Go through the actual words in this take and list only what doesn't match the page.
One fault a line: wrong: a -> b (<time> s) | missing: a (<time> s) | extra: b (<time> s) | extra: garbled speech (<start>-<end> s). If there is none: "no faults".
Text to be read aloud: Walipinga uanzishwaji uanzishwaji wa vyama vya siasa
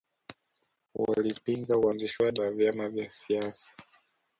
missing: uanzishwaji (2.4 s)